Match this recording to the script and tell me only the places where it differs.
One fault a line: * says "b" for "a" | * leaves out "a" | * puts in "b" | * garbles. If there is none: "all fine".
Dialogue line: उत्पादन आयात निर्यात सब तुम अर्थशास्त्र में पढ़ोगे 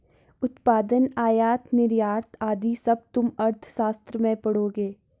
* puts in "आदि"